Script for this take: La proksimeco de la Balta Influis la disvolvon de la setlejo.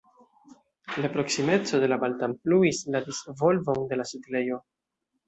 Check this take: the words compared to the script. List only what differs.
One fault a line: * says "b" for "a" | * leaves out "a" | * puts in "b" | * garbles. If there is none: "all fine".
all fine